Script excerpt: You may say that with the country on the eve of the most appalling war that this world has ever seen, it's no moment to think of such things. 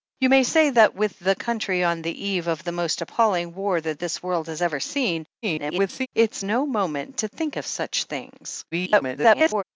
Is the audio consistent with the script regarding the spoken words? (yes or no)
no